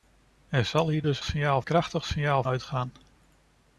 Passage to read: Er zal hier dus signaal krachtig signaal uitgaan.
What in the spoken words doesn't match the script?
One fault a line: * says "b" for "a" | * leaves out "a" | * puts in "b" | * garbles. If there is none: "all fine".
all fine